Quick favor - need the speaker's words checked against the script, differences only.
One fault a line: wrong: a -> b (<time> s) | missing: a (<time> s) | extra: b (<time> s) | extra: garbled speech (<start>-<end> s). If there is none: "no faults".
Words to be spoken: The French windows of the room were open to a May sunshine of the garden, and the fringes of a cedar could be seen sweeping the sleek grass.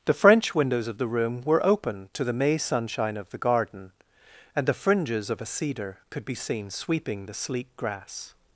wrong: a -> the (2.2 s)